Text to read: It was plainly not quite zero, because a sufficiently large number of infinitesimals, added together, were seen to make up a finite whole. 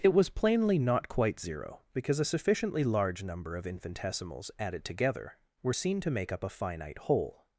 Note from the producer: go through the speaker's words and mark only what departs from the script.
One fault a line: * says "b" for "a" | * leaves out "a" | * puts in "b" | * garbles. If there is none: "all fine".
all fine